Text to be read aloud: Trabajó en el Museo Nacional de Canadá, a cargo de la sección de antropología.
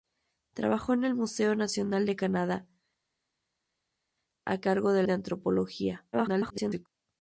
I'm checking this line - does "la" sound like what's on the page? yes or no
no